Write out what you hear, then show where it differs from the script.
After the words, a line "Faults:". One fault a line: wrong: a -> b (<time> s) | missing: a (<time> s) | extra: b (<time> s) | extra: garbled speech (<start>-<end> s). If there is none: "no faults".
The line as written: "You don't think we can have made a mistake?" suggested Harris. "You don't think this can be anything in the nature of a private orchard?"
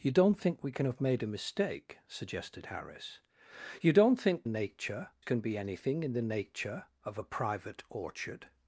"You don't think we can have made a mistake?" suggested Harris. "You don't think nature can be anything in the nature of a private orchard?"
Faults:
wrong: this -> nature (4.5 s)